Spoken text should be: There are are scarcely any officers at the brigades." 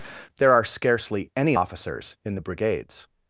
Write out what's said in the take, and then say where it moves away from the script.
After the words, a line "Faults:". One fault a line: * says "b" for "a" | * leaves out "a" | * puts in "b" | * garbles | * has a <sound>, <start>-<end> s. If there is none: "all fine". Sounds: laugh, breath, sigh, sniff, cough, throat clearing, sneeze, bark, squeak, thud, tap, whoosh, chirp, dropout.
There are scarcely any officers in the brigades."
Faults:
* leaves out "are"
* says "in" for "at"